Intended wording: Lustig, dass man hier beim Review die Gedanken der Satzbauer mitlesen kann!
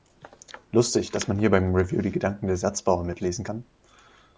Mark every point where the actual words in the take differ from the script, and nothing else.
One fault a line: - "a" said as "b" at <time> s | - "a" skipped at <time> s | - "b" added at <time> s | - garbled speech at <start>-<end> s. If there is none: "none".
none